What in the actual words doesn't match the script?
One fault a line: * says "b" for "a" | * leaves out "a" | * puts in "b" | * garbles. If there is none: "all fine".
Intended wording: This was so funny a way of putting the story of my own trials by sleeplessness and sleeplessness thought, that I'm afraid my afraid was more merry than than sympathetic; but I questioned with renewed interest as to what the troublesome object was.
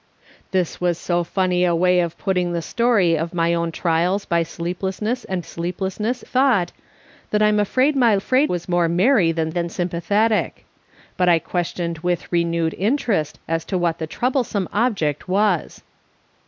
all fine